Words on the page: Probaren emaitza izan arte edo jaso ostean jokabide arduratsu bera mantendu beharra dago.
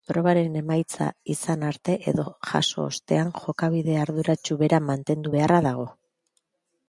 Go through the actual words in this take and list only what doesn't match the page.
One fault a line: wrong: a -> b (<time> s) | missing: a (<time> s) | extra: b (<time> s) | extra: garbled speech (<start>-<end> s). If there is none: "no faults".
no faults